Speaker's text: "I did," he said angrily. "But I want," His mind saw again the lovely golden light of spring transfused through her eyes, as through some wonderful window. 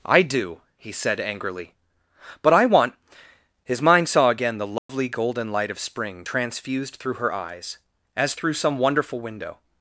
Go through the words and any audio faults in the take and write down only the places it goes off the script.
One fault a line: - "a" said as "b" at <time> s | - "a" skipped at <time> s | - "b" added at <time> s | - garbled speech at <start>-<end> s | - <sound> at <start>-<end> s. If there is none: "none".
- "did" said as "do" at 0.2 s
- dropout at 4.8-4.9 s